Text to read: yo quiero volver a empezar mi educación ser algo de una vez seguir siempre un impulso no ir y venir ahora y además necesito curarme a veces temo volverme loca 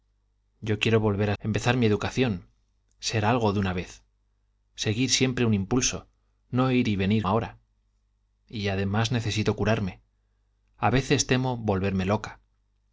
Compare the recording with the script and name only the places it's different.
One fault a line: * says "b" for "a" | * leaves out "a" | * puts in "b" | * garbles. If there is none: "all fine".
all fine